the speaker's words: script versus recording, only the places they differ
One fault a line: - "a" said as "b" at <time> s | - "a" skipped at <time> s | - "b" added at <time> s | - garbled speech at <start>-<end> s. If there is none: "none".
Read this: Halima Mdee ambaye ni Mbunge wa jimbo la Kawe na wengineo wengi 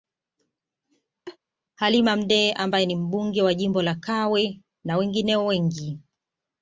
none